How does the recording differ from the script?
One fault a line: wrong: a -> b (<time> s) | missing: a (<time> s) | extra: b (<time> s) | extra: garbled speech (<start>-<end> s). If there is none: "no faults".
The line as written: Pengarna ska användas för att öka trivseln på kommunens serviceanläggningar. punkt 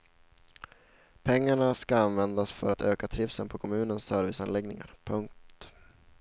no faults